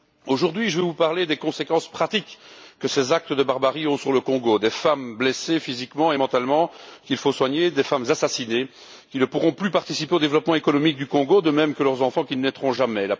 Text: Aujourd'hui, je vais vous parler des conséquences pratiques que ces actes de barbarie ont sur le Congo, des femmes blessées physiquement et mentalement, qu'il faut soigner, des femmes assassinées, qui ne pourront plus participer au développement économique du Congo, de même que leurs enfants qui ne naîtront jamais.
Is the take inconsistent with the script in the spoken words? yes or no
no